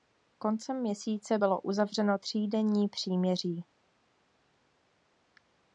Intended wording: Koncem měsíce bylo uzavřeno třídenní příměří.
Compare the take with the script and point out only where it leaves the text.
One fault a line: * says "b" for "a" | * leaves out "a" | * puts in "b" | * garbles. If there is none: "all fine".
all fine